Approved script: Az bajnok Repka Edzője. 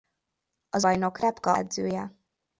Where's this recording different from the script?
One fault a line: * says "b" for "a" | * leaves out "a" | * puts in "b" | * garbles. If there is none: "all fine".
all fine